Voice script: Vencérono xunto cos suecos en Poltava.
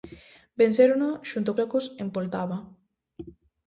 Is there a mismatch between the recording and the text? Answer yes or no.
yes